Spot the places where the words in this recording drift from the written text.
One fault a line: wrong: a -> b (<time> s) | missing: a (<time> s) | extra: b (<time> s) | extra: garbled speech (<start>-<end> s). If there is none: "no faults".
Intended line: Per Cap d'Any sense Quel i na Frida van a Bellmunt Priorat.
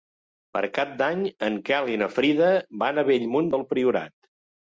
wrong: sense -> en (1.5 s)
extra: del (3.6 s)